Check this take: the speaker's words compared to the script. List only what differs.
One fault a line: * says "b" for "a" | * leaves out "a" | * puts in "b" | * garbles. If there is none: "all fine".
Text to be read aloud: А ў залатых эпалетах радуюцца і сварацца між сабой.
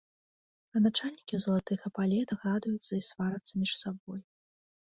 * puts in "начальнікі"